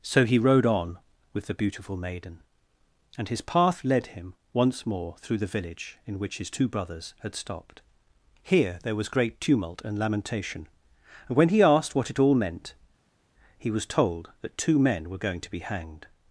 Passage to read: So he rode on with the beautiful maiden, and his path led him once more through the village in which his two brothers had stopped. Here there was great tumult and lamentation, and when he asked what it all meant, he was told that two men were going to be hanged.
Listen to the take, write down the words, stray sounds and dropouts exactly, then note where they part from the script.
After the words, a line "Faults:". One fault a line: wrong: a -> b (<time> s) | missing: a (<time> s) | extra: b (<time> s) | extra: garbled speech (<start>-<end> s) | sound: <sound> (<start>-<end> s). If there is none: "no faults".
So he rode on with the beautiful maiden, and his path led him once more through the village in which his two brothers had stopped. Here there was great tumult and lamentation, and when he asked what it all meant, he was told that two men were going to be hanged.
Faults:
no faults